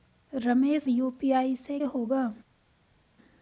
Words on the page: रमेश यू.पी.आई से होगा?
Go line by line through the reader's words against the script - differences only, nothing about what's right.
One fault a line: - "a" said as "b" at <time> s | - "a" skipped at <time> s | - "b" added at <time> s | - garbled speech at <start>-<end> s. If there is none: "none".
none